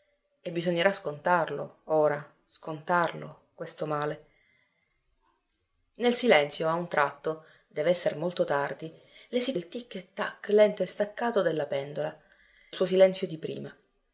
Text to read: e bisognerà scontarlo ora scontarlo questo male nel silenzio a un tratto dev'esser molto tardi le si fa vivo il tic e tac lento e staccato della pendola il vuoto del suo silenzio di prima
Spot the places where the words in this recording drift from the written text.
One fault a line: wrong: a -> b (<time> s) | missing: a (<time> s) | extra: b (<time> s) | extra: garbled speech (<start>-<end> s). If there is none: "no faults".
missing: fa vivo (9.5 s)
missing: il vuoto del (12.2 s)